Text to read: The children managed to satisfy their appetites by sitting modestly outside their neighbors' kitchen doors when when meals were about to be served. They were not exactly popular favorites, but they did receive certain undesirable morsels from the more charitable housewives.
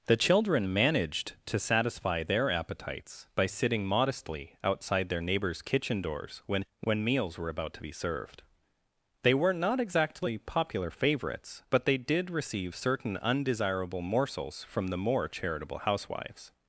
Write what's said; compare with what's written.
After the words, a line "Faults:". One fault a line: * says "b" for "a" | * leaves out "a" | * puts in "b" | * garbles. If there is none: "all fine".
The children managed to satisfy their appetites by sitting modestly outside their neighbors' kitchen doors when when meals were about to be served. They were not exactly popular favorites, but they did receive certain undesirable morsels from the more charitable housewives.
Faults:
all fine